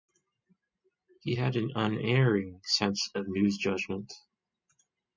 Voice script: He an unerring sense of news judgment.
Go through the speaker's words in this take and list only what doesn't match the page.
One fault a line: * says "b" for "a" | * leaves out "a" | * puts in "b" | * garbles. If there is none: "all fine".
* puts in "had"